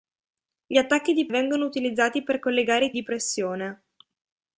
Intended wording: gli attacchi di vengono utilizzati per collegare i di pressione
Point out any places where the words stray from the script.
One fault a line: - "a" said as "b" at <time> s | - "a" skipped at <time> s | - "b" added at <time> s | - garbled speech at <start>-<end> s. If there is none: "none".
none